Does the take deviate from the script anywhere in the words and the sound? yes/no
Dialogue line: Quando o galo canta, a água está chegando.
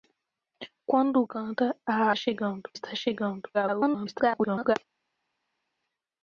yes